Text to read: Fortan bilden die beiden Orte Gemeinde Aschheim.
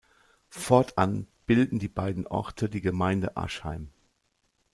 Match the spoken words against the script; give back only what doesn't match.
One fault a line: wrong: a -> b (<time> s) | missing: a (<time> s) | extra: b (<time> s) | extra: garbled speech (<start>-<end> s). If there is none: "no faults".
extra: die (2.7 s)